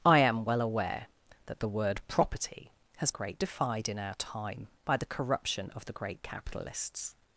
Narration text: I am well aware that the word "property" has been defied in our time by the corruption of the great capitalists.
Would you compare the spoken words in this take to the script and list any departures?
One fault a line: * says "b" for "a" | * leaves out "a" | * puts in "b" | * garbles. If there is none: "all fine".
* says "great" for "been"